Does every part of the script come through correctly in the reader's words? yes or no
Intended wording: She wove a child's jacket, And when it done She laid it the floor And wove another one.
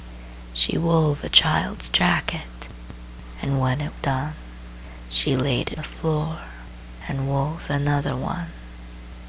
yes